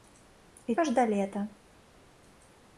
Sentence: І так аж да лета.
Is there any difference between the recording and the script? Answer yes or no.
yes